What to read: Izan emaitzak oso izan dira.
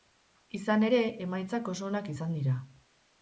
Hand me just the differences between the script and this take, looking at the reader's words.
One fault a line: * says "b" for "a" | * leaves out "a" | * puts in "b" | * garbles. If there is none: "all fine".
* puts in "ere"
* puts in "onak"